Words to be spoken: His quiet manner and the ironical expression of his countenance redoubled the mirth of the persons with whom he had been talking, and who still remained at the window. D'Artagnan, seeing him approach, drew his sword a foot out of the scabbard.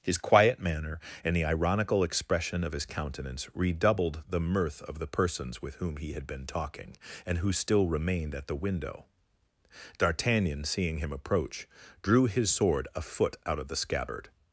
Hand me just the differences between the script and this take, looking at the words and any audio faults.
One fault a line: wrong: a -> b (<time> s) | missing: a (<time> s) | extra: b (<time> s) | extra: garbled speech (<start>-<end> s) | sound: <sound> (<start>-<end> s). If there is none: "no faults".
no faults